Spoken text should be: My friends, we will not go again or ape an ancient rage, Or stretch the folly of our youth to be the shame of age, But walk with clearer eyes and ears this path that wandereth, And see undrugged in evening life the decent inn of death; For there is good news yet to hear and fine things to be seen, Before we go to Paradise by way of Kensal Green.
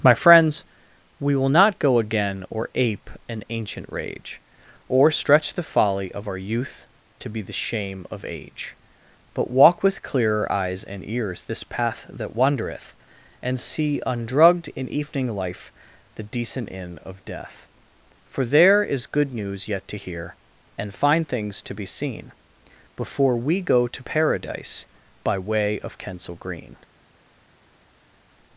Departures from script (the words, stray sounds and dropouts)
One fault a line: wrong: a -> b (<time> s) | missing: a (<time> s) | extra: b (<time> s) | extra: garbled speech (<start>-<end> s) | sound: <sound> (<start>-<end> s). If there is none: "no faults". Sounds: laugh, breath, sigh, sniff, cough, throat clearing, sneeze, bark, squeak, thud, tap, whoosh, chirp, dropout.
no faults